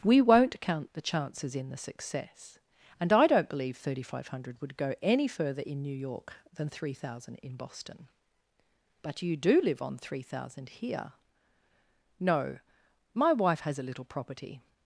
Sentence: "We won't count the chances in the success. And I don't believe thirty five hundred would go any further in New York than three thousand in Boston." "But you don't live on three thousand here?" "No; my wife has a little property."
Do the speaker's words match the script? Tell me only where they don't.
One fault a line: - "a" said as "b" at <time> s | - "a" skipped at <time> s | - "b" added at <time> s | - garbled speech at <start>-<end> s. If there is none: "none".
- "don't" said as "do" at 9.4 s